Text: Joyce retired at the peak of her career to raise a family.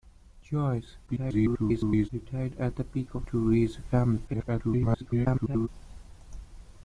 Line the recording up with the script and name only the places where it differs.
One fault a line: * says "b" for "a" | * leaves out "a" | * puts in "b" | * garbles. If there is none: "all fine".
* garbles
* leaves out "her career"
* garbles